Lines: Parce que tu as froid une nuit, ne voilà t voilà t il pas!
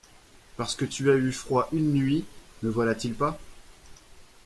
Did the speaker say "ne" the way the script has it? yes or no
yes